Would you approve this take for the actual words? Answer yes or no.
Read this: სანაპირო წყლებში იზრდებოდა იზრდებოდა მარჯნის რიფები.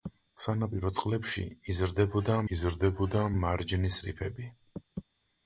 yes